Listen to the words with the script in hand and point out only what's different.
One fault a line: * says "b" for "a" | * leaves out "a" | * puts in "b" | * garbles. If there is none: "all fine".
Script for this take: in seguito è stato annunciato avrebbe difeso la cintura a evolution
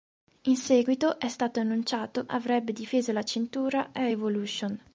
all fine